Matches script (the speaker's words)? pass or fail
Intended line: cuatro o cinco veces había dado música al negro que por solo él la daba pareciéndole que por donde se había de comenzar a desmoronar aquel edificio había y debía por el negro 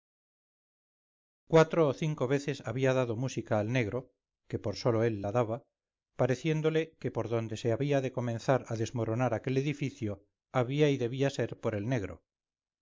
fail